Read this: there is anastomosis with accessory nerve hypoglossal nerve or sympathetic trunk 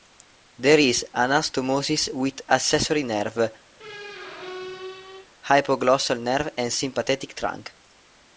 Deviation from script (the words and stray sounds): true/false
true